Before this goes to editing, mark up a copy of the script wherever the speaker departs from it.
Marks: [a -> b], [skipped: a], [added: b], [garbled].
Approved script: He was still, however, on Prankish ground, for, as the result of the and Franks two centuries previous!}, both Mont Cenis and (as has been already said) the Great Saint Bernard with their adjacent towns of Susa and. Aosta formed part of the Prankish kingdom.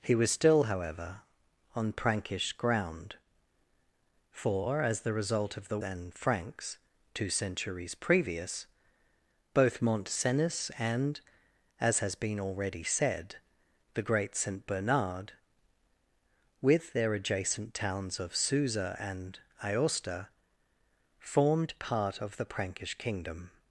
He was still, however, on Prankish ground, for, as the result of the and Franks two centuries previous!}, both Mont Cenis and (as has been already said) the Great Saint Bernard with their adjacent towns of Susa and. Aosta formed part of the Prankish kingdom.